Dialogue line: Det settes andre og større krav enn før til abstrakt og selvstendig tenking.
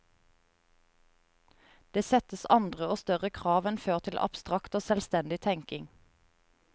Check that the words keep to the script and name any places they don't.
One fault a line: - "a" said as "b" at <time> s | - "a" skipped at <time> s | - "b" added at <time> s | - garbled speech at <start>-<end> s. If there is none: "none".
none